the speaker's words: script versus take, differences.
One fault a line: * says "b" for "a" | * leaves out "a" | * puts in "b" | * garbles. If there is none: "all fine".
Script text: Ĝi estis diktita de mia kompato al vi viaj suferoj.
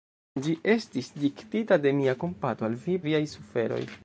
all fine